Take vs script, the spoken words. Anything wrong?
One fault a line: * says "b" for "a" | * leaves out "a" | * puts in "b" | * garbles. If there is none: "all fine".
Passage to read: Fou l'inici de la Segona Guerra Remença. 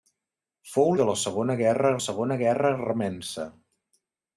* leaves out "l'inici"
* puts in "Segona Guerra"